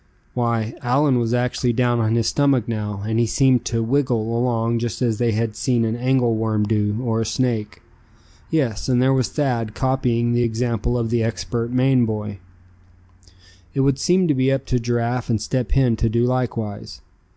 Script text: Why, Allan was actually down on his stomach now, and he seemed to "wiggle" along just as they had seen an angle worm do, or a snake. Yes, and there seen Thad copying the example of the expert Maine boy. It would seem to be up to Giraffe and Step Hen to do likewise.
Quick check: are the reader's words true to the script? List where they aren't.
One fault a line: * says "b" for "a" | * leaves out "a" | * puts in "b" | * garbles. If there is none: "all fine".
* says "was" for "seen"